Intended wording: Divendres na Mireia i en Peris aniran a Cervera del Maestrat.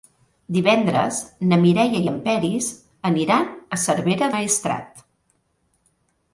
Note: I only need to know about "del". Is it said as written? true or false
false